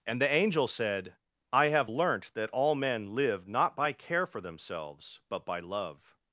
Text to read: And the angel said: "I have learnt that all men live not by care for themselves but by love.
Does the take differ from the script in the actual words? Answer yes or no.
no